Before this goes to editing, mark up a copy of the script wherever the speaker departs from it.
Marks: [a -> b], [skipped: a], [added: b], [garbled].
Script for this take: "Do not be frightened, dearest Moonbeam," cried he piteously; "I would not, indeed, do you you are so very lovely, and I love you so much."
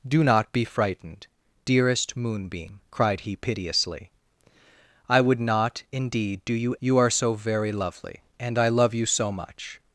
"Do not be frightened, dearest Moonbeam," cried he piteously; "I would not, indeed, do you you are so very lovely, and I love you so much."